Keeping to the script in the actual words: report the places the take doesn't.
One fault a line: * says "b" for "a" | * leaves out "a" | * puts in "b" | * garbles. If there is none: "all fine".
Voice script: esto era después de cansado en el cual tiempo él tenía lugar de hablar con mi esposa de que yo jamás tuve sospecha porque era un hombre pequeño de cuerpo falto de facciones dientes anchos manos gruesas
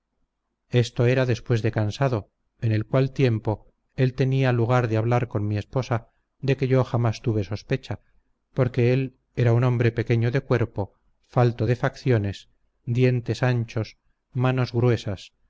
* puts in "él"